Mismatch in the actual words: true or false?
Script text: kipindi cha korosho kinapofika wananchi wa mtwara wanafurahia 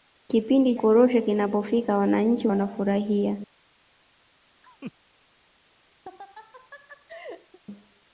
true